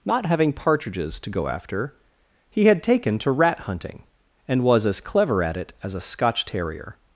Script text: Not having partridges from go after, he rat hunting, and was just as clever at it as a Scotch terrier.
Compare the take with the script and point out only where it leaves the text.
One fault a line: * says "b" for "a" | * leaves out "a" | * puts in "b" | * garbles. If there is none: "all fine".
* says "to" for "from"
* puts in "had taken to"
* leaves out "just"